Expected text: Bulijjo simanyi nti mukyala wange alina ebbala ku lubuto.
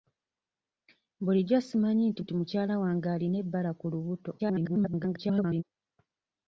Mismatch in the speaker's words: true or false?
true